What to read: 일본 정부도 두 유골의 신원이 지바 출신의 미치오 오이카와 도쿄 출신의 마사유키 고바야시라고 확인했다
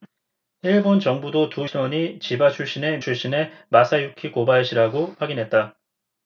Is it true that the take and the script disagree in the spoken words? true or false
true